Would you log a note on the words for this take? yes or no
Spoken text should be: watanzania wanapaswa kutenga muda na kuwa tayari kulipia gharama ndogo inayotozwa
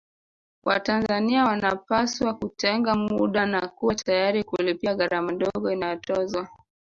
no